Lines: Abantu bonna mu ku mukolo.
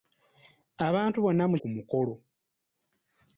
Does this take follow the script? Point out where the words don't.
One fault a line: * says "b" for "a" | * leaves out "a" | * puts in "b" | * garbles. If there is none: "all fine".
all fine